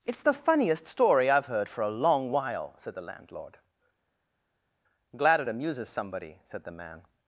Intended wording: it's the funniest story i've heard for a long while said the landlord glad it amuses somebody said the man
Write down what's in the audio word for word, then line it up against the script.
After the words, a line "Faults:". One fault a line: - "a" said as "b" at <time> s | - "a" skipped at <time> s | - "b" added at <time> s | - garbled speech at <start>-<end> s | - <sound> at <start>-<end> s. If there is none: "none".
it's the funniest story i've heard for a long while said the landlord glad it amuses somebody said the man
Faults:
none